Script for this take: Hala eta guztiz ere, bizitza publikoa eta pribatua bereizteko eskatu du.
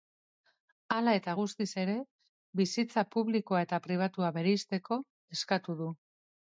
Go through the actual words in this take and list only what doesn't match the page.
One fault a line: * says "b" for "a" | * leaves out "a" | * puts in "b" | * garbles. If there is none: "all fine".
all fine